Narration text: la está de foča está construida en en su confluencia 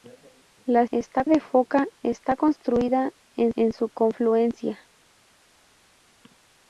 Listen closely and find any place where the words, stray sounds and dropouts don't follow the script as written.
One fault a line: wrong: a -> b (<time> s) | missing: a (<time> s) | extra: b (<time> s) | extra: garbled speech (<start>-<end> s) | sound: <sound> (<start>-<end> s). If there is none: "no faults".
no faults